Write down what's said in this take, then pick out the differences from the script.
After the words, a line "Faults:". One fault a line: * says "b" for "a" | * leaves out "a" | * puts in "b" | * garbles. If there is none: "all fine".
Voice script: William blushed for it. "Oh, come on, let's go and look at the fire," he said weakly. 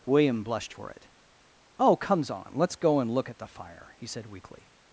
William blushed for it. "Oh, comes on, let's go and look at the fire," he said weakly.
Faults:
* says "comes" for "come"